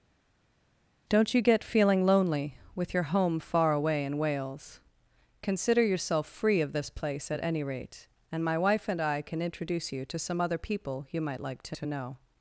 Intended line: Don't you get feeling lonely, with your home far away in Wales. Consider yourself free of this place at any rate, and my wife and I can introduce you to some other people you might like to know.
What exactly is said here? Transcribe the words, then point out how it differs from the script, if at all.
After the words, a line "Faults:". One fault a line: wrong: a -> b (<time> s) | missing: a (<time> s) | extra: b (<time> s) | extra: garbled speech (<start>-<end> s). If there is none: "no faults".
Don't you get feeling lonely, with your home far away in Wales. Consider yourself free of this place at any rate, and my wife and I can introduce you to some other people you might like to to know.
Faults:
extra: to (11.7 s)